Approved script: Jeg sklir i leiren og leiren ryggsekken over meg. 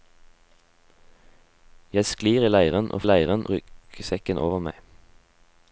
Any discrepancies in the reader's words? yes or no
no